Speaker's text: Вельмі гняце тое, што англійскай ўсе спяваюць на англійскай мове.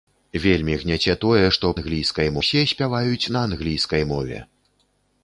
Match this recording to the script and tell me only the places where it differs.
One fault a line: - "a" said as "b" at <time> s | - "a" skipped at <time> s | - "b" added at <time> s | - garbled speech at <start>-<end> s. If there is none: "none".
none